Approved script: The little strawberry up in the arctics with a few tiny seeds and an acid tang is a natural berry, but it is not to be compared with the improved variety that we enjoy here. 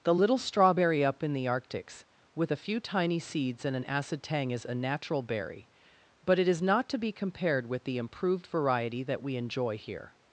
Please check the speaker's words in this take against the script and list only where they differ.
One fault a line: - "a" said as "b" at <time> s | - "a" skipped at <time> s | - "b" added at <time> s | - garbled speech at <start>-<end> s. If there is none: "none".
none